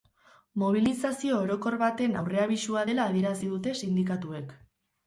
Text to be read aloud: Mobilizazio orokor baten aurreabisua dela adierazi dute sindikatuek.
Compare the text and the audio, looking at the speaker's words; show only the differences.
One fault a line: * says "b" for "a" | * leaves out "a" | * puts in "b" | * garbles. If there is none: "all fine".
all fine